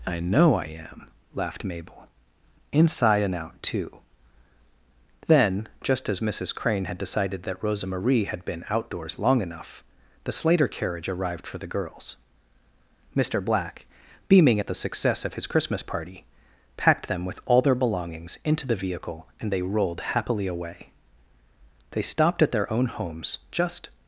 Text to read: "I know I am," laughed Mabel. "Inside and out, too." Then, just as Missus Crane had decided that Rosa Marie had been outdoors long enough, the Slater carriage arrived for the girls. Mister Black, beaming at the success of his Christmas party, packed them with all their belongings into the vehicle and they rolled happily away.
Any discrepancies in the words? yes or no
yes